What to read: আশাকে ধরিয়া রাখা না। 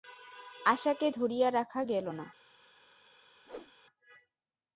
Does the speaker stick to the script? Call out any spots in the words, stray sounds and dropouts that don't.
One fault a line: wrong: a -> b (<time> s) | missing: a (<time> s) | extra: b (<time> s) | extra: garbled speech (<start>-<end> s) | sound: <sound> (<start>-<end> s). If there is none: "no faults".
extra: গেল (1.8 s)
sound: whoosh (3.5-3.7 s)